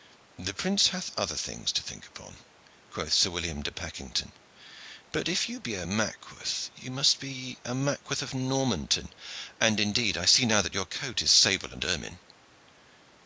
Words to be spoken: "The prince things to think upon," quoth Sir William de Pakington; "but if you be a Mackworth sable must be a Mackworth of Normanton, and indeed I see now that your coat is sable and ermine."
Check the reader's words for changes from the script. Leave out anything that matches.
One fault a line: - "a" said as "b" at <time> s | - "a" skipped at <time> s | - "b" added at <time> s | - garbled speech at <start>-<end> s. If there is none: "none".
- "hath other" added at 0.9 s
- "sable" said as "you" at 6.7 s